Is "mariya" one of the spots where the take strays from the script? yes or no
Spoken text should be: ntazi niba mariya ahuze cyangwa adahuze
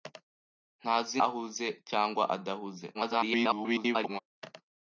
yes